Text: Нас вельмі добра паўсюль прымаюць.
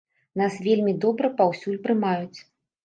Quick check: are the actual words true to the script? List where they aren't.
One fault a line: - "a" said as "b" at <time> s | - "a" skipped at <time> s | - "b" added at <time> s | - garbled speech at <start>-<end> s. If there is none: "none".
none